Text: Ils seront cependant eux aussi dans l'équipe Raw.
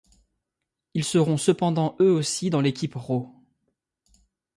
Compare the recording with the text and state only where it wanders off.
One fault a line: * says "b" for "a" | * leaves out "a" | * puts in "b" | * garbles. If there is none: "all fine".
all fine